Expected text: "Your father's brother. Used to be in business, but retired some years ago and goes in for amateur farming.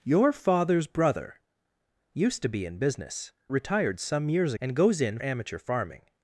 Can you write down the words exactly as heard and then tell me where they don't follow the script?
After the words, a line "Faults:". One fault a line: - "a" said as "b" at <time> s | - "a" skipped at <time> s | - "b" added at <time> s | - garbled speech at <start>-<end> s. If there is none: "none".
"Your father's brother. Used to be in business, retired some years and goes in amateur farming.
Faults:
- "but" skipped at 3.3 s
- "ago" skipped at 4.5 s
- "for" skipped at 5.2 s